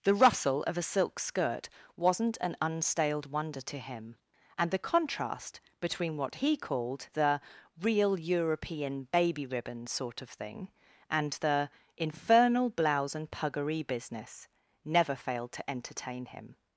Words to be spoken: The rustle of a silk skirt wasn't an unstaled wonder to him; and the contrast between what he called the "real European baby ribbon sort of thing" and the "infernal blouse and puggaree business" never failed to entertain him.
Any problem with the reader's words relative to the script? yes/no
no